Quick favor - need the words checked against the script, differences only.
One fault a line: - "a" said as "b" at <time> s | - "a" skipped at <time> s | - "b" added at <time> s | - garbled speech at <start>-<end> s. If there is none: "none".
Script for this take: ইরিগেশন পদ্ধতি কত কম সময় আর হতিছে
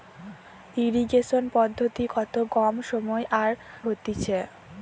none